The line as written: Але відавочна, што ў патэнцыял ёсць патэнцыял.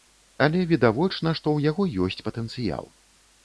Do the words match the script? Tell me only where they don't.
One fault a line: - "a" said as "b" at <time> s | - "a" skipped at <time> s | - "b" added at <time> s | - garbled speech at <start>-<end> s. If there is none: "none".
- "патэнцыял" said as "яго" at 1.7 s